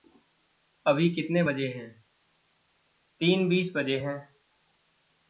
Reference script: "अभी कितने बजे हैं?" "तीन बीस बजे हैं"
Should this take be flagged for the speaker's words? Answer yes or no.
no